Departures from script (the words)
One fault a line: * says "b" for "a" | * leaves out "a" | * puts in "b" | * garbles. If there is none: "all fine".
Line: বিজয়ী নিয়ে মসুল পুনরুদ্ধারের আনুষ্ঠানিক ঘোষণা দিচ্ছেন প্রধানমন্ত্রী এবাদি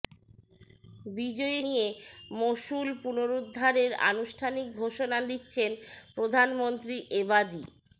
all fine